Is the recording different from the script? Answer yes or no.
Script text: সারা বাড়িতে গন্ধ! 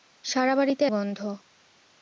no